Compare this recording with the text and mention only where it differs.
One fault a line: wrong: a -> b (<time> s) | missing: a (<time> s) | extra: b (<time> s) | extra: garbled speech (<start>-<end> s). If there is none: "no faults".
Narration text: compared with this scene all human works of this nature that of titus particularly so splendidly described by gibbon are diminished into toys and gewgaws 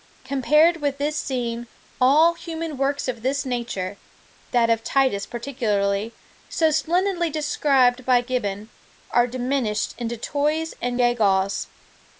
no faults